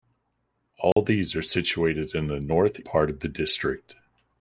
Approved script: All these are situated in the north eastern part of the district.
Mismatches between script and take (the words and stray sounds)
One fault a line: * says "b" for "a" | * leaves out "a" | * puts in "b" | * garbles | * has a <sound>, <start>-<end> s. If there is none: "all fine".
* has a dropout, 0.9-1.0 s
* leaves out "eastern"